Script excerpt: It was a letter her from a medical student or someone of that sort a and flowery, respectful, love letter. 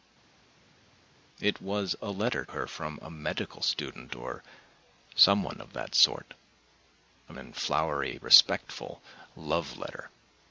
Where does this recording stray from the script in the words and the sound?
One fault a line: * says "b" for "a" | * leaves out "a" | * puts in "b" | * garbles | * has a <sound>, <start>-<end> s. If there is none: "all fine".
all fine